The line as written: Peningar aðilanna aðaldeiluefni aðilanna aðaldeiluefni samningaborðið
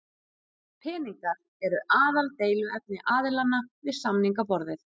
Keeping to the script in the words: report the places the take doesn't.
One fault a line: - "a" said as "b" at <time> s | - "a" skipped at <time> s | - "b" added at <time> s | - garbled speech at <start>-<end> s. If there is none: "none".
- "aðilanna" said as "eru" at 1.7 s
- "aðaldeiluefni" said as "við" at 3.9 s